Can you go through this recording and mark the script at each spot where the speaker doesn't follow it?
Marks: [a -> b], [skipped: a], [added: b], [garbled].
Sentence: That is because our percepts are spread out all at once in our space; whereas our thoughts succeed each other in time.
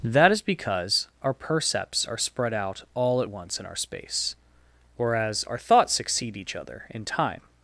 That is because our percepts are spread out all at once in our space; whereas our thoughts succeed each other in time.